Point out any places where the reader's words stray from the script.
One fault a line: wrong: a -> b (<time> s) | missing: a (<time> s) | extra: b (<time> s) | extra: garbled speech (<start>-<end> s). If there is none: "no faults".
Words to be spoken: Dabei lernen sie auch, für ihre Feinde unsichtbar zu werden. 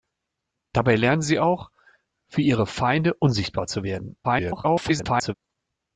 extra: garbled speech (4.2-5.3 s)